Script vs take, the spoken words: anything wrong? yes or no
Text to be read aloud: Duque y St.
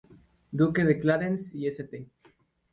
yes